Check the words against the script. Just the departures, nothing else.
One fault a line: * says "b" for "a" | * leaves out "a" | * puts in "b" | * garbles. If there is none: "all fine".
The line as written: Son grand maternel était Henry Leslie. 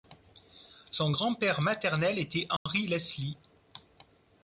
* puts in "père"